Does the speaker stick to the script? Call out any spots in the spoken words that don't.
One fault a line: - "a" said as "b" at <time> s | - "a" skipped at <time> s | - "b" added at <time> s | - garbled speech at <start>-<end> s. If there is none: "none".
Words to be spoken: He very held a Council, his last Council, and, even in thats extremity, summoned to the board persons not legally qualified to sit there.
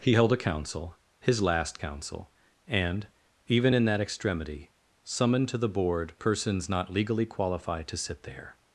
- "very" skipped at 0.1 s
- "thats" said as "that" at 3.9 s